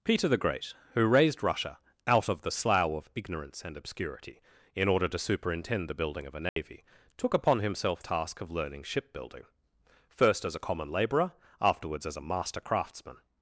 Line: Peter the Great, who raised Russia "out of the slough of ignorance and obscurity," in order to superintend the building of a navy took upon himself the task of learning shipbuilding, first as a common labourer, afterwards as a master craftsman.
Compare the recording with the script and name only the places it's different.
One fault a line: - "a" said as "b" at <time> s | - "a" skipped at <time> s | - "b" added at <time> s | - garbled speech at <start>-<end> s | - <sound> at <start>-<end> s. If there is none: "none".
- dropout at 6.5-6.6 s
- "the" skipped at 8.0 s